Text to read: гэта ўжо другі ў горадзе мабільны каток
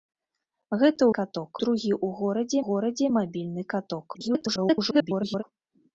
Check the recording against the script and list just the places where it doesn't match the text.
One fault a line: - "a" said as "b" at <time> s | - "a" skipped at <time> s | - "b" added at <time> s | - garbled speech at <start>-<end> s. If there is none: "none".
- "ўжо" said as "каток" at 1.2 s
- "горадзе" added at 2.7 s
- garbled speech at 4.1-5.4 s